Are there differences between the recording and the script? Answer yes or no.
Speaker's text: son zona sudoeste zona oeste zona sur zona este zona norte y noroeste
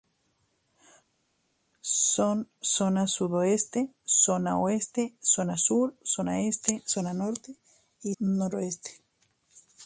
no